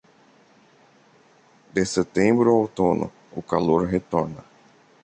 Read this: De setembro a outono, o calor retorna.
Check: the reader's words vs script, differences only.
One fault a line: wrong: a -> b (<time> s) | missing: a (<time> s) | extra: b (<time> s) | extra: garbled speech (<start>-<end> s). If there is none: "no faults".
no faults